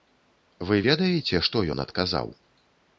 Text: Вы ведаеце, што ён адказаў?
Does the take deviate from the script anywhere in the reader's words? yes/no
no